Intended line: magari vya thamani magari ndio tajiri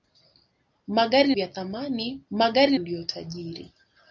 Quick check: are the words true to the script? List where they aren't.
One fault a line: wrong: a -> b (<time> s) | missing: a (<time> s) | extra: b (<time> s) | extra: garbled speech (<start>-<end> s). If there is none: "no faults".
no faults